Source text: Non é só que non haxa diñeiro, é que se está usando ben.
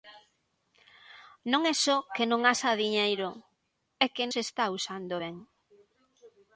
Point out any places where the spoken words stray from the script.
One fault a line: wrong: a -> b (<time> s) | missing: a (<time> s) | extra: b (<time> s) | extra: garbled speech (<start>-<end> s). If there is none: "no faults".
no faults